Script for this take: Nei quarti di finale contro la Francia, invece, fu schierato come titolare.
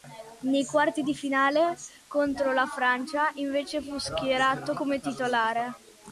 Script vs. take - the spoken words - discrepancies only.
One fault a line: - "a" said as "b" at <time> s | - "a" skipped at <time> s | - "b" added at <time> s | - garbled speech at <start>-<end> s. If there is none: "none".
none